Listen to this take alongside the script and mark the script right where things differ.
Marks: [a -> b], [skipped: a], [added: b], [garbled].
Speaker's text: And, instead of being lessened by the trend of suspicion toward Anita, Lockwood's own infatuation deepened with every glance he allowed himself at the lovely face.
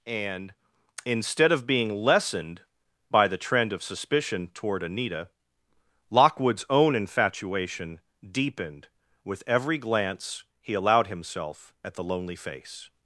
And, instead of being lessened by the trend of suspicion toward Anita, Lockwood's own infatuation deepened with every glance he allowed himself at the [lovely -> lonely] face.